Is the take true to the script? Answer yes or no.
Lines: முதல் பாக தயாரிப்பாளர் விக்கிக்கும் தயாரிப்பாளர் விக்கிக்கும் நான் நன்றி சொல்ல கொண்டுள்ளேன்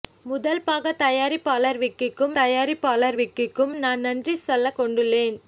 yes